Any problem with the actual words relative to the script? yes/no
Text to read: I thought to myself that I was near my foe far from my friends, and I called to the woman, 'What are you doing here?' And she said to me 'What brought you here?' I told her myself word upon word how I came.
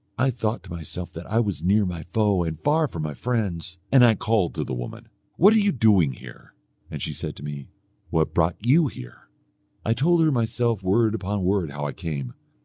yes